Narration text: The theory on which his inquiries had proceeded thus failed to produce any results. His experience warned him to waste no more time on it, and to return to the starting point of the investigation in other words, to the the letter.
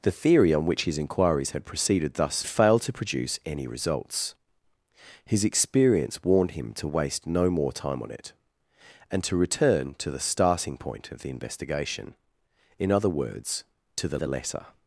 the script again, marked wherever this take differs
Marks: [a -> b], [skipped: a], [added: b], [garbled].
The theory on which his inquiries had proceeded thus failed to produce any results. His experience warned him to waste no more time on it, and to return to the starting point of the investigation in other words, to the the letter.